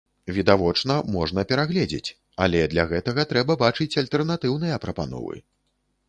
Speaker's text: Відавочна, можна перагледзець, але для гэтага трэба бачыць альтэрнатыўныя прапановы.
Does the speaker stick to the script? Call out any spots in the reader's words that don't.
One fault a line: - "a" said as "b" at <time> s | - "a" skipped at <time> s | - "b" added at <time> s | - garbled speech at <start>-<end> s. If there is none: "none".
none